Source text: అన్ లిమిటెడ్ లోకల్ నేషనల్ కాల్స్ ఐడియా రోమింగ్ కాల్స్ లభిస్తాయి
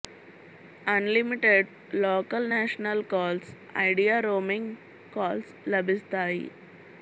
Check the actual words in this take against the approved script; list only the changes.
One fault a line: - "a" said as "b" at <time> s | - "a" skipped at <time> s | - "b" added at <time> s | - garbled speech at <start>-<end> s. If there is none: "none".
none